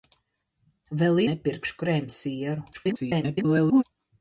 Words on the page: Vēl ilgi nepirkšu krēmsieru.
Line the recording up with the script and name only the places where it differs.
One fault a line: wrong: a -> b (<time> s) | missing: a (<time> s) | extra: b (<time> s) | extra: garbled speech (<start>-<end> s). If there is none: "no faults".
missing: ilgi (1.2 s)
extra: garbled speech (2.7-3.8 s)